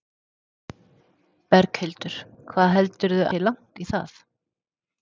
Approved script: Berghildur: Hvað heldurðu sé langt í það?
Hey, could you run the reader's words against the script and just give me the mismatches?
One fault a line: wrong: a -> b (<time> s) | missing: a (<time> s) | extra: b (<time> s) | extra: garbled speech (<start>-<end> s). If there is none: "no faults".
no faults